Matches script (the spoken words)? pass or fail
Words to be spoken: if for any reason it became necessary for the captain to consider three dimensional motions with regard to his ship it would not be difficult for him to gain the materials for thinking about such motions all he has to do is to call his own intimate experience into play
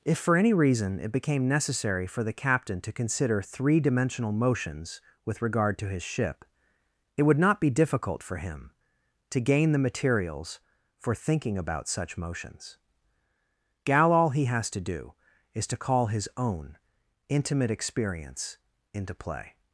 fail